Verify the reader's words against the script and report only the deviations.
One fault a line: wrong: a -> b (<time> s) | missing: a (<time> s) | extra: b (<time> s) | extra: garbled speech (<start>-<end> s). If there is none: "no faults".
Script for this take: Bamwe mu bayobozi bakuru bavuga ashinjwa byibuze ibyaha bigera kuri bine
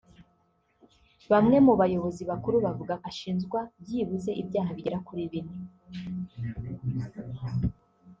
no faults